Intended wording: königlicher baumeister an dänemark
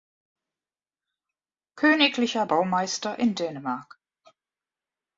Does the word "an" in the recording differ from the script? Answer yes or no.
yes